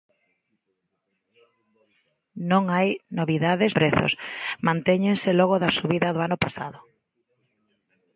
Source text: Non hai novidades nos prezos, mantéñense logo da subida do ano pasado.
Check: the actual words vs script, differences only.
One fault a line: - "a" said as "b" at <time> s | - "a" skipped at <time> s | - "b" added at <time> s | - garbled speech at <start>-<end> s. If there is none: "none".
- "nos" skipped at 3.7 s